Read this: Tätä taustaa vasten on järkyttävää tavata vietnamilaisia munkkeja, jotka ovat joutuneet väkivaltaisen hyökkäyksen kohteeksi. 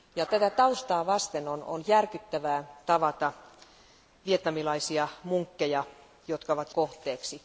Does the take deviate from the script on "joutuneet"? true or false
true